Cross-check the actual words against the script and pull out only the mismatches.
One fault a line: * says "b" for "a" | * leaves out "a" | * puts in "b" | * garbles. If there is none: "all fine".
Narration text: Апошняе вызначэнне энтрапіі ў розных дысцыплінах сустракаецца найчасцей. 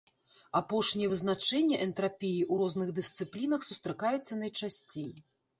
all fine